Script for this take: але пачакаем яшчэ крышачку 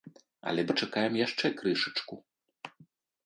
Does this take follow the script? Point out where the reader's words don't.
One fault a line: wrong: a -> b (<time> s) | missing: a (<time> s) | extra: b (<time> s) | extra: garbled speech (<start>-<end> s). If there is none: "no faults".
no faults